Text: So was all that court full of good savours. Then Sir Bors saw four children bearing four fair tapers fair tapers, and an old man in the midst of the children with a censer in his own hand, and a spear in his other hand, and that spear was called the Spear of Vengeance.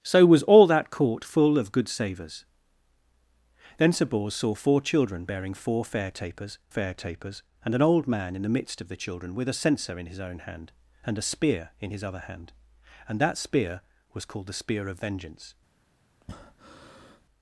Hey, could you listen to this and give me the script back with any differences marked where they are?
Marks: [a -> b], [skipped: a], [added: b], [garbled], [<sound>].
So was all that court full of good savours. Then Sir Bors saw four children bearing four fair tapers fair tapers, and an old man in the midst of the children with a censer in his own hand, and a spear in his other hand, and that spear was called the Spear of Vengeance. [breath]